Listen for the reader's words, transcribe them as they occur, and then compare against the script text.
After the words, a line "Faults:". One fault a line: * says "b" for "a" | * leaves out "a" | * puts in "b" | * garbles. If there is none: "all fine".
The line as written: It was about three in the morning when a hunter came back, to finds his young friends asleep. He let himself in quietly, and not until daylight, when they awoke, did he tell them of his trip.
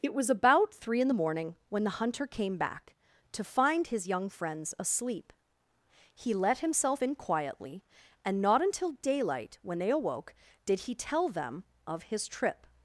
It was about three in the morning when the hunter came back, to find his young friends asleep. He let himself in quietly, and not until daylight, when they awoke, did he tell them of his trip.
Faults:
* says "the" for "a"
* says "find" for "finds"